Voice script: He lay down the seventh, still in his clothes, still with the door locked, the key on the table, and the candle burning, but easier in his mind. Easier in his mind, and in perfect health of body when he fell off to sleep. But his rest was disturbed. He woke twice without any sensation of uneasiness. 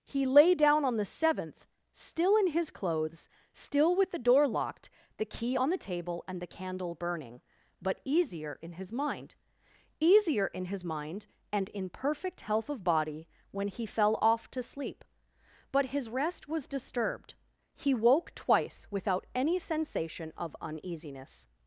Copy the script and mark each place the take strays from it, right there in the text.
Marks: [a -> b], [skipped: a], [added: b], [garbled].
He lay down [added: on] the seventh, still in his clothes, still with the door locked, the key on the table, and the candle burning, but easier in his mind. Easier in his mind, and in perfect health of body when he fell off to sleep. But his rest was disturbed. He woke twice without any sensation of uneasiness.